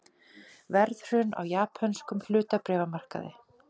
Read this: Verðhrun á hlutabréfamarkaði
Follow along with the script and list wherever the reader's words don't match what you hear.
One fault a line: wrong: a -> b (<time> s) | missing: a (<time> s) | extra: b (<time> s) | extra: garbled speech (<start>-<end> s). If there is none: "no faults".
extra: japönskum (1.5 s)